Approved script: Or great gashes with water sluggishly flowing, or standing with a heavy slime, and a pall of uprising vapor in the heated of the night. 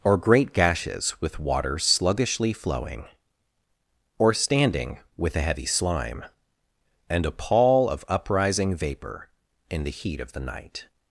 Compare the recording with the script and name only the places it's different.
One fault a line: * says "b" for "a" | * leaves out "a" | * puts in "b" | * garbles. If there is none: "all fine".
* says "heat" for "heated"